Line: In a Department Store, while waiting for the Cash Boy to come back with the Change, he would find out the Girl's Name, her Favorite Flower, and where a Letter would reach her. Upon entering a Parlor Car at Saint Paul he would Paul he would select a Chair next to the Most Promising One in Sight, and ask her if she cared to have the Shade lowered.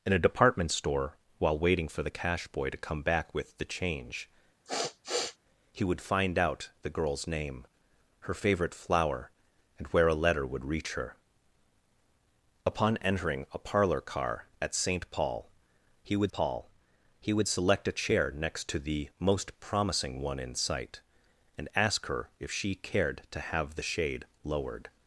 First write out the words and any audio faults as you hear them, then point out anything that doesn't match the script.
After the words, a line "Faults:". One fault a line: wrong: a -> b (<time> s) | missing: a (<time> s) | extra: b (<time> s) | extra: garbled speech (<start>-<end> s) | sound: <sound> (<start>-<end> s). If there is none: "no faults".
In a Department Store, while waiting for the Cash Boy to come back with the Change, he would find out the Girl's Name, her Favorite Flower, and where a Letter would reach her. Upon entering a Parlor Car at Saint Paul he would Paul he would select a Chair next to the Most Promising One in Sight, and ask her if she cared to have the Shade lowered.
Faults:
sound: sniff (4.6-5.4 s)